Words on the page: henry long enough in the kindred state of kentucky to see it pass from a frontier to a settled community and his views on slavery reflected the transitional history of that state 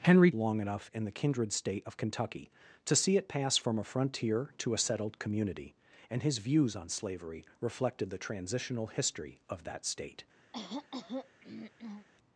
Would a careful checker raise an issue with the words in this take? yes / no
no